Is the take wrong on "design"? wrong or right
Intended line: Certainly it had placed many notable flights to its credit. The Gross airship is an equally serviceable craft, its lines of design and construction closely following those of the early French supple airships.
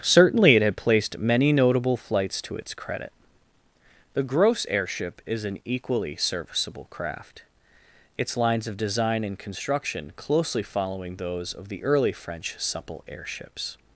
right